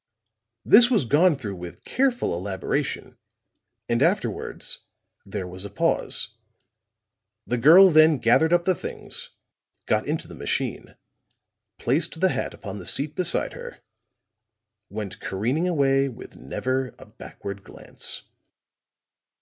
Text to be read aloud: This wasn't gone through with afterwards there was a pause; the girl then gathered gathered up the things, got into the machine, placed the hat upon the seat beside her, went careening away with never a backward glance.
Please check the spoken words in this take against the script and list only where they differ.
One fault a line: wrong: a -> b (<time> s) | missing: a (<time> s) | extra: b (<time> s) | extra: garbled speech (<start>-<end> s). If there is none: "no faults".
wrong: wasn't -> was (0.9 s)
extra: careful elaboration and (1.8 s)
missing: gathered (8.5 s)